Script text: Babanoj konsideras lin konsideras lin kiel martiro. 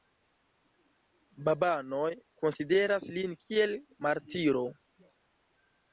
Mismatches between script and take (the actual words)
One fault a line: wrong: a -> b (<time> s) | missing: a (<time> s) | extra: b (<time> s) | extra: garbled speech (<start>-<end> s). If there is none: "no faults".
missing: konsideras lin (3.4 s)